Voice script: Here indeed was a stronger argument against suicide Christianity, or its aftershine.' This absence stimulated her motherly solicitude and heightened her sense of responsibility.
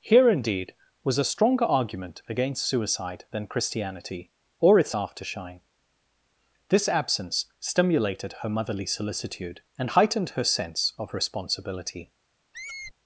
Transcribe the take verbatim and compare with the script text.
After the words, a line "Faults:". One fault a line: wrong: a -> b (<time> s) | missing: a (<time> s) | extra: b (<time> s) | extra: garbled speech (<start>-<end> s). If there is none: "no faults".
Here indeed was a stronger argument against suicide than Christianity, or its aftershine.' This absence stimulated her motherly solicitude and heightened her sense of responsibility.
Faults:
extra: than (3.3 s)